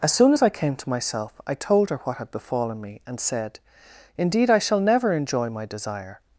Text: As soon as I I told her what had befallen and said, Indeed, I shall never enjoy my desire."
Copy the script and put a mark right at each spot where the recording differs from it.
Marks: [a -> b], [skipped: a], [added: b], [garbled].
As soon as I [added: came to myself] I told her what had befallen [added: me] and said, Indeed, I shall never enjoy my desire."